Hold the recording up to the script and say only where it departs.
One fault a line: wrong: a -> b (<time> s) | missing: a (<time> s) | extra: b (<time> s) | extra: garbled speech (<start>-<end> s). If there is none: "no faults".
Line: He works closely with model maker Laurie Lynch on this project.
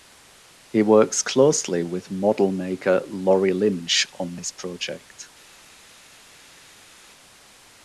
no faults